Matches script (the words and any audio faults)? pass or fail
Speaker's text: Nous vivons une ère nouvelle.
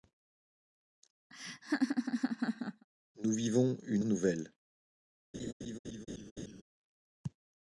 fail